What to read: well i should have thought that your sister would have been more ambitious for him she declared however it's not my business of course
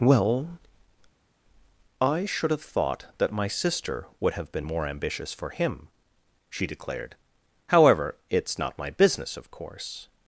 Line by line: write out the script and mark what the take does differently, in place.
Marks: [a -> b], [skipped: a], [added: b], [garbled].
well i should have thought that [your -> my] sister would have been more ambitious for him she declared however it's not my business of course